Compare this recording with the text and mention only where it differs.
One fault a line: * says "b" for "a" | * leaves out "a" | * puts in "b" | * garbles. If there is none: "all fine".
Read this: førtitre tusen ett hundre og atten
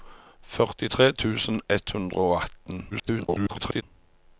* garbles